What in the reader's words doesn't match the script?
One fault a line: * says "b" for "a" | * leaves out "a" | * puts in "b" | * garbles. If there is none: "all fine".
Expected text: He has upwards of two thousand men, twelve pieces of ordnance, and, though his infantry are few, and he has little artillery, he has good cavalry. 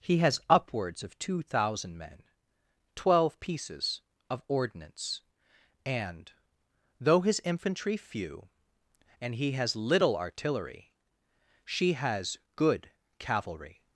* leaves out "are"
* says "she" for "he"